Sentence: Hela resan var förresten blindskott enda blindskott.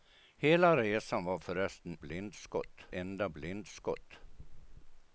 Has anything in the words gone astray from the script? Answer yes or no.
no